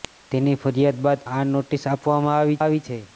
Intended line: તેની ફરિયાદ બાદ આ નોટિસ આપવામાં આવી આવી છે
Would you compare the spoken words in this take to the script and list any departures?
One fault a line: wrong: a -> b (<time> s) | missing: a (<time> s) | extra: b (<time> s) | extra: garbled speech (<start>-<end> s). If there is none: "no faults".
no faults